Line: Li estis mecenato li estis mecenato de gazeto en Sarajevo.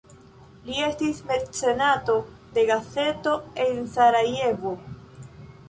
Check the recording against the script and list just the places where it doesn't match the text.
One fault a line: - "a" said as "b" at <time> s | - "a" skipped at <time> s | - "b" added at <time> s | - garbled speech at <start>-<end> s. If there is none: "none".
- "li estis mecenato" skipped at 2.2 s